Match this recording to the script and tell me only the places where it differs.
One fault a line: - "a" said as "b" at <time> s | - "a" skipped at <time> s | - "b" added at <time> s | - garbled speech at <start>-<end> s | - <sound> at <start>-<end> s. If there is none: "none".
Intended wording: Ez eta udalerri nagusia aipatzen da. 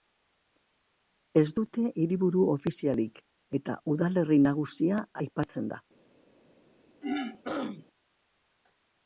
- "dute hiriburu ofizialik" added at 1.6 s
- throat clearing at 7.0-7.9 s